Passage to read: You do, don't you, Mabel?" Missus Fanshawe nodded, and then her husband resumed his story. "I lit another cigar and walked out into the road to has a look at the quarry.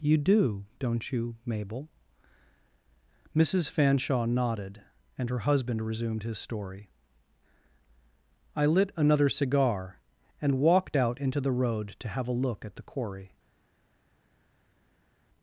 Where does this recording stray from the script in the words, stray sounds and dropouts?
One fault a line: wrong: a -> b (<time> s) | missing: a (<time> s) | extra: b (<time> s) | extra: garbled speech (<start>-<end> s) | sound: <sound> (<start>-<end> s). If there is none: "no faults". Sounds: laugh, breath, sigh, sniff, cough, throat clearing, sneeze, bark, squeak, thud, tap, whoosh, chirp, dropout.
missing: then (5.3 s)
wrong: has -> have (12.1 s)